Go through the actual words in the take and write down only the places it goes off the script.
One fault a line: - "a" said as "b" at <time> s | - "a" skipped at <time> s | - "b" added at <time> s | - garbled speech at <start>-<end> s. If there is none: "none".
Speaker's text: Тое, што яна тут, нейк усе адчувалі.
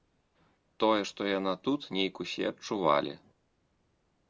none